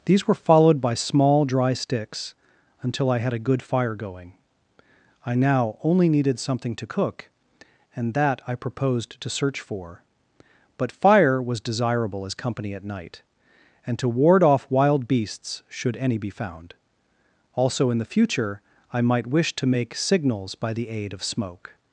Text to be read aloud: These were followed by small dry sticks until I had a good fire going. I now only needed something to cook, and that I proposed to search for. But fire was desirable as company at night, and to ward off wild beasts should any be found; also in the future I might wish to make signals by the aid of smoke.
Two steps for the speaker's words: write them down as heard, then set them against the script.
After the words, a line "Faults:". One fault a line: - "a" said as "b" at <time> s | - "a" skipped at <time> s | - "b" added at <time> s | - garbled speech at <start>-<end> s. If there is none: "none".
These were followed by small dry sticks until I had a good fire going. I now only needed something to cook, and that I proposed to search for. But fire was desirable as company at night, and to ward off wild beasts should any be found; also in the future I might wish to make signals by the aid of smoke.
Faults:
none